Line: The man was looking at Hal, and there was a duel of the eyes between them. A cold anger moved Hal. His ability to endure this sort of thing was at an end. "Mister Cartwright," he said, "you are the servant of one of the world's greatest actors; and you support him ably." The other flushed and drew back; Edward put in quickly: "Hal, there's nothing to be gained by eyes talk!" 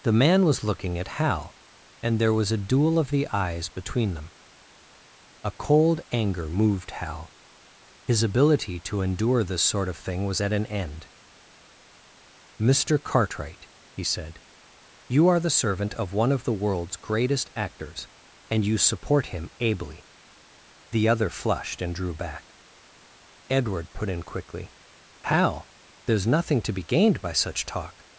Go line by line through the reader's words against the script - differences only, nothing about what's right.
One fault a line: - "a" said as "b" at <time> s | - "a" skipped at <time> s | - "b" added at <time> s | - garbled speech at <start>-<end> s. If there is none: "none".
- "eyes" said as "such" at 27.3 s